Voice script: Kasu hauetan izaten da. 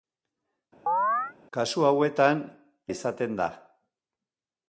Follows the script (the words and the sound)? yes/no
no